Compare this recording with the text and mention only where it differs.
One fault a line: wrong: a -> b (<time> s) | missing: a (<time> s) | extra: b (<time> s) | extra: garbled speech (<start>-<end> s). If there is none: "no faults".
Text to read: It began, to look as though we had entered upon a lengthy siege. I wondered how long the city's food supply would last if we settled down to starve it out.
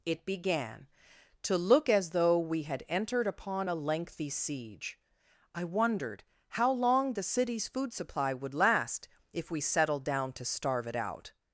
no faults